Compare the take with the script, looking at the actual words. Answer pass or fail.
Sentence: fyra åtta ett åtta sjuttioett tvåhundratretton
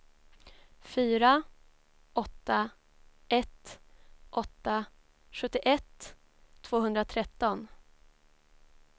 pass